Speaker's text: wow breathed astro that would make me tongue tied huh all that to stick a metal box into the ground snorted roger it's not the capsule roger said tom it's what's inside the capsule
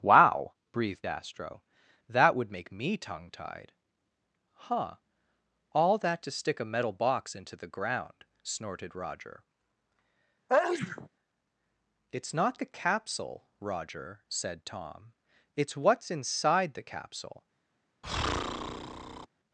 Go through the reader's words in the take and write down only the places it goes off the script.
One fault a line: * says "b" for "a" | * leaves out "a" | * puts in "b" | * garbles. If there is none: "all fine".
all fine